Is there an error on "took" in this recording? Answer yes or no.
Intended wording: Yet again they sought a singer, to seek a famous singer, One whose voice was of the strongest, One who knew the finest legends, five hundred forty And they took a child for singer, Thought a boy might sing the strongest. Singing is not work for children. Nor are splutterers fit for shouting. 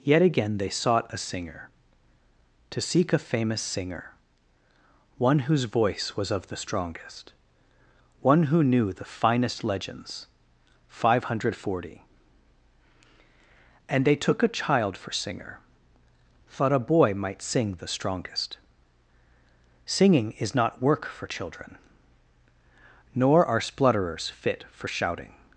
no